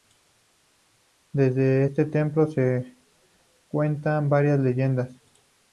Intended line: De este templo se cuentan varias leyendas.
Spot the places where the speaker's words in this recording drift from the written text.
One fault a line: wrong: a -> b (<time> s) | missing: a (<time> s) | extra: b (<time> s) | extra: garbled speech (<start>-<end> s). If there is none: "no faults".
no faults